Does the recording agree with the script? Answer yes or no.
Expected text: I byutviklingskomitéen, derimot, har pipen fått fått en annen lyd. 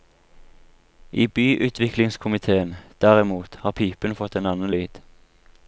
no